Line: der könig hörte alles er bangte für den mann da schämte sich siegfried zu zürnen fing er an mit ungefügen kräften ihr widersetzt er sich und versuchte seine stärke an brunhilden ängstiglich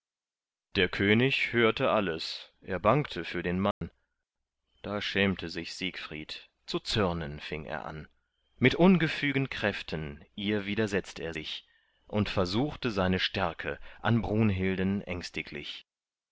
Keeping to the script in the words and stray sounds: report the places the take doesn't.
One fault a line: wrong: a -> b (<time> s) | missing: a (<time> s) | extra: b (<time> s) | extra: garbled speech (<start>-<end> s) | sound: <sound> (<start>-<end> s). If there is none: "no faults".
sound: dropout (3.7-3.8 s)